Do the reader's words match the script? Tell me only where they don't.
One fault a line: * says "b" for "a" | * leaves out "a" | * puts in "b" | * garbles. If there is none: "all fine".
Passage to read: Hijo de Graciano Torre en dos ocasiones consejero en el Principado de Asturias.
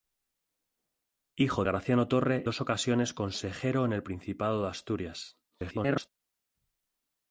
* leaves out "de"
* leaves out "en"
* garbles